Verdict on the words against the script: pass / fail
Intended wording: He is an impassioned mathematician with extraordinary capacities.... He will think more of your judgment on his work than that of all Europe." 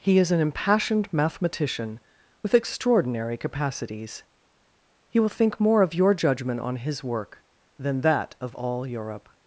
pass